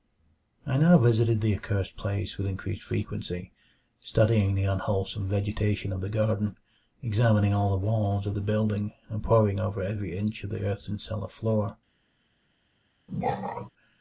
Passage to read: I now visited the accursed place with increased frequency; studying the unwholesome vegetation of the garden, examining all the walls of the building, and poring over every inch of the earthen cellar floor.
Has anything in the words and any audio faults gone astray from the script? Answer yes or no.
yes